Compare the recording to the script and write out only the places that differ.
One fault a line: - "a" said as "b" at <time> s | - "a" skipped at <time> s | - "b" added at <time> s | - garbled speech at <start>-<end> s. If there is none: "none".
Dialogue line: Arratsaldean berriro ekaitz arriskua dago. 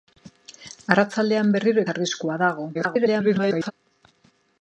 - "ekaitz" skipped at 1.9 s
- garbled speech at 2.7-3.7 s